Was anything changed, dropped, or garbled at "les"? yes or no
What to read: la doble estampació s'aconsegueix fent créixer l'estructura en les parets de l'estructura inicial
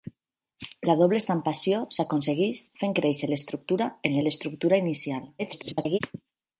yes